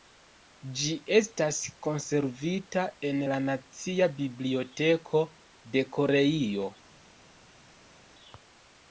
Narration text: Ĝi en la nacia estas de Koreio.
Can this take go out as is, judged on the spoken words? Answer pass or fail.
fail